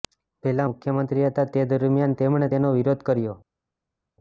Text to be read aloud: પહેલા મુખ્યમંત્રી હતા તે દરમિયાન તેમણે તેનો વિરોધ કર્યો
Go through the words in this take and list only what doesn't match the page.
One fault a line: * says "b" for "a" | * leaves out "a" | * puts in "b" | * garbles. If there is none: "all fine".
all fine